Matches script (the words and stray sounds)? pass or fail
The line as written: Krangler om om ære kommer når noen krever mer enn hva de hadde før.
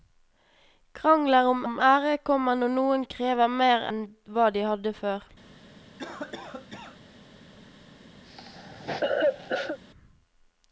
fail